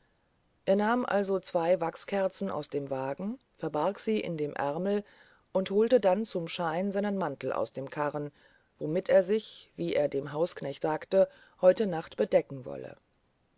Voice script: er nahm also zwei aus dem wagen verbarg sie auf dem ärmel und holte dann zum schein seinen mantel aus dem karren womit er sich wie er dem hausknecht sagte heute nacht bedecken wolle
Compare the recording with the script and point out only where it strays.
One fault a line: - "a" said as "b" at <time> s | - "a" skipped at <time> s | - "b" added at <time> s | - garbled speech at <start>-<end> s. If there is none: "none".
- "wachskerzen" added at 1.8 s
- "auf" said as "in" at 4.2 s